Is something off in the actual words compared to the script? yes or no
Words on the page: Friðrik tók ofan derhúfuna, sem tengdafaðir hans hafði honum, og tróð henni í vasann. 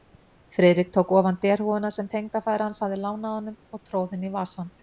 yes